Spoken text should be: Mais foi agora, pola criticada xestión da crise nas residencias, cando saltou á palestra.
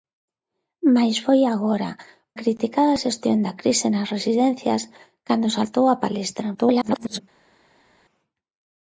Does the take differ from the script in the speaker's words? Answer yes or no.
yes